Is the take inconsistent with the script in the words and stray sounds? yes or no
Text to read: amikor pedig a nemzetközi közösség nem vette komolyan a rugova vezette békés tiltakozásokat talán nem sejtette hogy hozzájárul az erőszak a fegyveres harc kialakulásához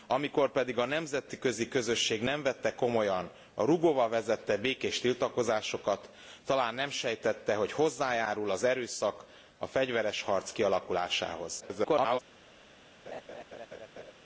yes